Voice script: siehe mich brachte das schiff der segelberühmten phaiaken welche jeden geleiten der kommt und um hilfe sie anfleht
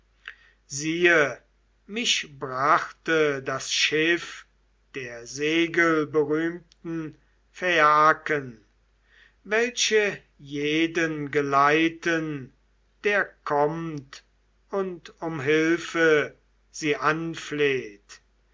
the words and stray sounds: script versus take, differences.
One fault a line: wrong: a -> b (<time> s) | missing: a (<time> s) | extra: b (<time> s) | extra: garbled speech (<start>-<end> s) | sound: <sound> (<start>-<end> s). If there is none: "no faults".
no faults